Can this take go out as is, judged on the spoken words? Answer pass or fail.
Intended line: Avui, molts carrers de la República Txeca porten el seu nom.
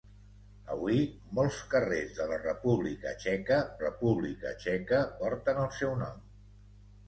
fail